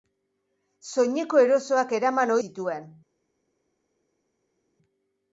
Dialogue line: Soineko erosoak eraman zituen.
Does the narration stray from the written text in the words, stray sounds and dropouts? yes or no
no